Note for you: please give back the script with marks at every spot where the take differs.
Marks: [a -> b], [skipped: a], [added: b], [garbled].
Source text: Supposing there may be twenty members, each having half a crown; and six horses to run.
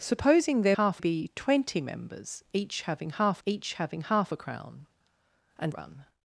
Supposing there [may -> half] be twenty members, each having half [added: each having half] a crown; and [skipped: six horses to] run.